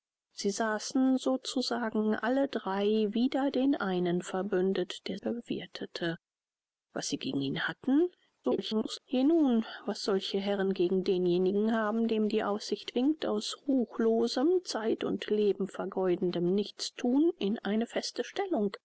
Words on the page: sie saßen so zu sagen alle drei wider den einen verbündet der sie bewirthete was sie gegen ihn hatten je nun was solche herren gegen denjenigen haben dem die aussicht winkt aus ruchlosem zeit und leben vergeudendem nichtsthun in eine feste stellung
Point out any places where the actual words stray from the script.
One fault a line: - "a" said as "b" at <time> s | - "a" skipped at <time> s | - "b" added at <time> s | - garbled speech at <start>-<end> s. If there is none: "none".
- "sie" skipped at 5.2 s
- garbled speech at 8.4-9.0 s